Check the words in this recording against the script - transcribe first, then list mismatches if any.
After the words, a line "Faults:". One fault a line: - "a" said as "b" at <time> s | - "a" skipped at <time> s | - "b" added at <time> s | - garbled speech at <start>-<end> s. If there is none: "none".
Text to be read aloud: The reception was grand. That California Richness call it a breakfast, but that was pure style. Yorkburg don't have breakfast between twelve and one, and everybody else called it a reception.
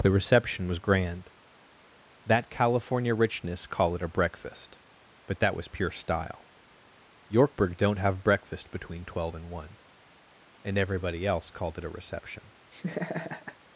The reception was grand. That California Richness call it a breakfast, but that was pure style. Yorkburg don't have breakfast between twelve and one, and everybody else called it a reception.
Faults:
none